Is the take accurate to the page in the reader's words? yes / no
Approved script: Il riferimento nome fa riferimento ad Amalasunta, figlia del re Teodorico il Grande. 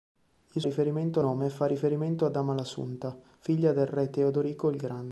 yes